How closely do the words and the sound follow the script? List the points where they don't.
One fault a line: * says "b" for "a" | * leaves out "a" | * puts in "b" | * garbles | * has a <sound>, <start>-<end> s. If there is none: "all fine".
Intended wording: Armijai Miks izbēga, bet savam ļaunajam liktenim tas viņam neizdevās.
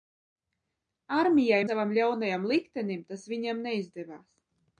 * leaves out "Miks izbēga bet"